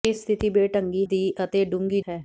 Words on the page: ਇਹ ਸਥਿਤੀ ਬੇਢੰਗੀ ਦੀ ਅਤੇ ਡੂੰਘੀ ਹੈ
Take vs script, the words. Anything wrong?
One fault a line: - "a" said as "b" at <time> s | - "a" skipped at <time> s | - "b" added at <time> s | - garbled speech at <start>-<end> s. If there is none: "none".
none